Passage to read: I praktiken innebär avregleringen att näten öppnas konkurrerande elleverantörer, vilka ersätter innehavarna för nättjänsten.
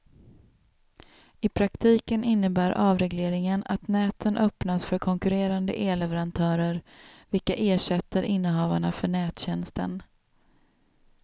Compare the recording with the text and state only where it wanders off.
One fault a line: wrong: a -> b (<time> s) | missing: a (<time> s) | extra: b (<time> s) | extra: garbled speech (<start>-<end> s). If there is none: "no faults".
extra: för (4.8 s)